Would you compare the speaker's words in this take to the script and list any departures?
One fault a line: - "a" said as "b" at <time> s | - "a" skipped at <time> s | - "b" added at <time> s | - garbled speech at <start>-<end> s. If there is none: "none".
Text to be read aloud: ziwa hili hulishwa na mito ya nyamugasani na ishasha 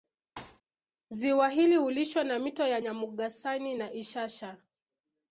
none